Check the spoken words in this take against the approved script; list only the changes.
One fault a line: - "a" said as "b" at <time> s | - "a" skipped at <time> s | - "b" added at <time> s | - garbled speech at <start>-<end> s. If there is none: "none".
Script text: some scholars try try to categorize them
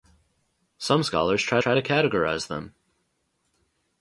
none